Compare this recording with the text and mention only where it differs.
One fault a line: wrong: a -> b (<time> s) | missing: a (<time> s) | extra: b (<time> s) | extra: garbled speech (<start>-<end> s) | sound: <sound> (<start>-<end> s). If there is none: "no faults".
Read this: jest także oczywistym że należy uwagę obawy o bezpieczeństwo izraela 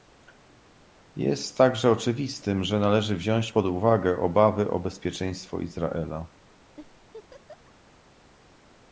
extra: wziąć pod (3.1 s)
sound: laugh (6.8-7.7 s)